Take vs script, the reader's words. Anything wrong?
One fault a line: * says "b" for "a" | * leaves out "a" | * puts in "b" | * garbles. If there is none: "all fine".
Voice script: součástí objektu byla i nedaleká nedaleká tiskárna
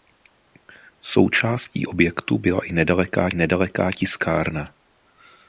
all fine